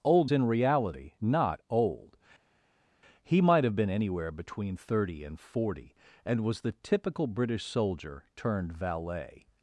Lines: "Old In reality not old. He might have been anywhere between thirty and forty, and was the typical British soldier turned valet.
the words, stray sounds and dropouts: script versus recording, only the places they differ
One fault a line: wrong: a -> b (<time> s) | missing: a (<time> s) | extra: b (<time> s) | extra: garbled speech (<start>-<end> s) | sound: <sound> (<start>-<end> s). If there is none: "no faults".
no faults